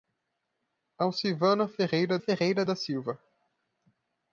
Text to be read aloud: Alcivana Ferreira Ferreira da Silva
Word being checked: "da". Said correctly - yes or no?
yes